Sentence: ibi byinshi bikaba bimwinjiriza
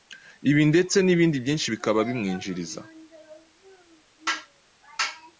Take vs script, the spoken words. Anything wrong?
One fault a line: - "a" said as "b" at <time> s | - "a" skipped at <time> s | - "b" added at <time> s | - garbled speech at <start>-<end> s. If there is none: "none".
- "ndetse n'ibindi" added at 0.7 s